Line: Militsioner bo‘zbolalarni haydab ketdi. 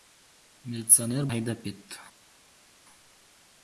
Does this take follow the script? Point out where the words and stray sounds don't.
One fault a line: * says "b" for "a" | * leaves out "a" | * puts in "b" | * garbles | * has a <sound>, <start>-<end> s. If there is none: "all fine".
* leaves out "bo‘zbolalarni"